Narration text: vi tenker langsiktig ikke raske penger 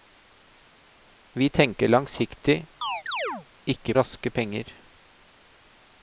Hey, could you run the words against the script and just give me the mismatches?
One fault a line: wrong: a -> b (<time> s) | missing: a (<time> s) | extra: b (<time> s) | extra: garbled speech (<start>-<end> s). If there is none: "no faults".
no faults